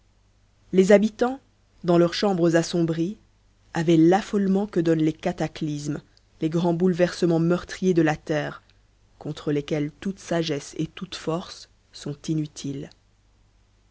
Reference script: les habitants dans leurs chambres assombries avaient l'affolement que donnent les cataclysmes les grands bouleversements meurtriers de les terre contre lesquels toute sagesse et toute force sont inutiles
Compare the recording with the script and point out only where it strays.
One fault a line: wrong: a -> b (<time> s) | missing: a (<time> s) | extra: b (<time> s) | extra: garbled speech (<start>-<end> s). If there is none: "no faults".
wrong: les -> la (8.0 s)